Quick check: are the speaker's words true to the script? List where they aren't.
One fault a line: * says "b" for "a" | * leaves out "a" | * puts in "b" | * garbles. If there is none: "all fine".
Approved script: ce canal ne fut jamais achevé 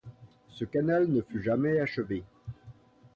all fine